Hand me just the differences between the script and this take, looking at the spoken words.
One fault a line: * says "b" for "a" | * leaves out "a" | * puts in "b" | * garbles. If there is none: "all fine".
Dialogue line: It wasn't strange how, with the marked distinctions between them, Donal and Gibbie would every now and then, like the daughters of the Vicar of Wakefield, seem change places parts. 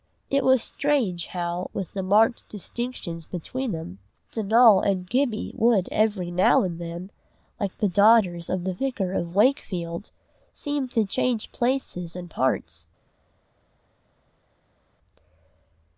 * says "was" for "wasn't"
* puts in "to"
* puts in "and"